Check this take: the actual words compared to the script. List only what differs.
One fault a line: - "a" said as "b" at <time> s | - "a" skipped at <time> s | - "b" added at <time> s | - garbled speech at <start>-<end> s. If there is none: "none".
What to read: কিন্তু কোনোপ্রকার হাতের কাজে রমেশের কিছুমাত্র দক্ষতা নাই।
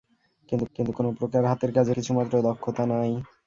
- "কিন্তু" added at 0.8 s
- "রমেশের" skipped at 1.9 s